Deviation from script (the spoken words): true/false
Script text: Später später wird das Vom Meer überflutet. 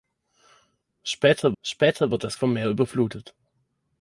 false